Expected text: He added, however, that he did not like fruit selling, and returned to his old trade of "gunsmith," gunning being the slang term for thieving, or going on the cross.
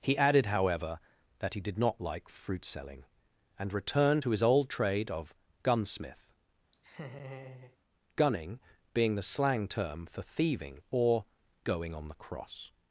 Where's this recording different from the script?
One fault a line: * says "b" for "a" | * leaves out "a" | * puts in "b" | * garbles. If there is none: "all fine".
all fine